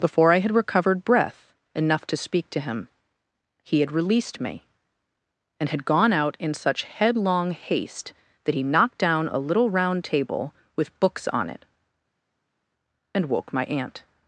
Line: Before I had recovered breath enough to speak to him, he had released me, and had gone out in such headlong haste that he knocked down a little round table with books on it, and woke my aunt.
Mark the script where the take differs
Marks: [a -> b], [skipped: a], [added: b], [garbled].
Before I had recovered breath enough to speak to him, he had released me, and had gone out in such headlong haste that he knocked down a little round table with books on it, and woke my aunt.